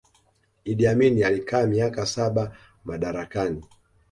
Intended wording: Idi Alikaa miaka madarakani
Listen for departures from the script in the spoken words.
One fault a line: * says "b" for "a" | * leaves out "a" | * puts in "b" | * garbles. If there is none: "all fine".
* puts in "Amin"
* puts in "saba"